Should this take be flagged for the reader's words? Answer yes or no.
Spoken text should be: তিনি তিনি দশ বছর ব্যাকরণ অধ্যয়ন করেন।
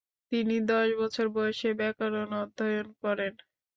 yes